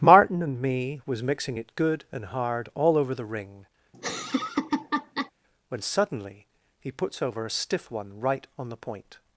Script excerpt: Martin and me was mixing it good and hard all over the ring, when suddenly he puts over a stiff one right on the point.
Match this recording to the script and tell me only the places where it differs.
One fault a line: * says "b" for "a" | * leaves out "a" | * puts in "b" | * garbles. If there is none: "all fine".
all fine